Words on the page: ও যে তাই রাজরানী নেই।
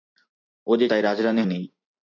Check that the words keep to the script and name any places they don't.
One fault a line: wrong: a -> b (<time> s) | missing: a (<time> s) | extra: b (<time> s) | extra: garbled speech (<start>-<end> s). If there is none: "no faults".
no faults